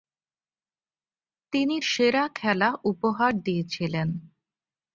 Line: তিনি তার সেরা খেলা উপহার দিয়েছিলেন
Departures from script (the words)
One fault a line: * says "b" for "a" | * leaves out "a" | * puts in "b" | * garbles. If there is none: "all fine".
* leaves out "তার"